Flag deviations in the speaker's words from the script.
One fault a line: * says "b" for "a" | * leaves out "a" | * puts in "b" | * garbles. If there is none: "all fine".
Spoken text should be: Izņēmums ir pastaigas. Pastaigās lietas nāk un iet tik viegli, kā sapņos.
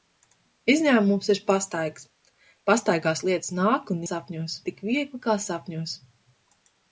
* says "sapņos" for "iet"